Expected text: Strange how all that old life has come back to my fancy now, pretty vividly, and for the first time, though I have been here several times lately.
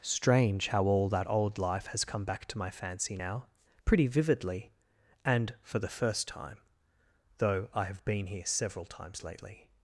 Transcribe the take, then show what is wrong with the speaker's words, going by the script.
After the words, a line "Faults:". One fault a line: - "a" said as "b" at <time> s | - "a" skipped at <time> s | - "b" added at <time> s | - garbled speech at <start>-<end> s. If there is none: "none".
Strange how all that old life has come back to my fancy now, pretty vividly, and for the first time, though I have been here several times lately.
Faults:
none